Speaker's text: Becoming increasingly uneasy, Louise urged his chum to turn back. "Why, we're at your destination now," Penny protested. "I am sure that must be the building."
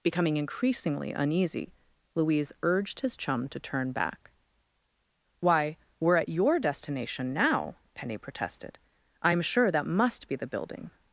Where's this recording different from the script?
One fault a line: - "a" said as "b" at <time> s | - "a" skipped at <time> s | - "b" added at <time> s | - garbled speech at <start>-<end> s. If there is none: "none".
none